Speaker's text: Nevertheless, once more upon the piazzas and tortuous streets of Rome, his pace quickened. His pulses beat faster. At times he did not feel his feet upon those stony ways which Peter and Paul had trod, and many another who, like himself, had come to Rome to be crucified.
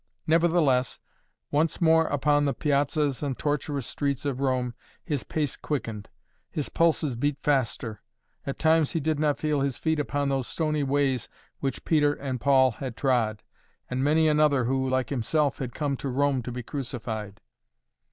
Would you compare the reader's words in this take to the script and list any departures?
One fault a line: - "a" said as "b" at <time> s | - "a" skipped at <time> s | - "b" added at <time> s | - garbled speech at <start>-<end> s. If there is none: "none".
none